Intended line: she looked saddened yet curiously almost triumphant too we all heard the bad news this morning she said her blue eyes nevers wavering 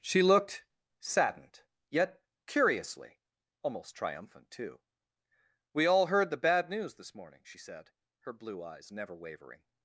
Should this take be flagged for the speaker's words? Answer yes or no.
yes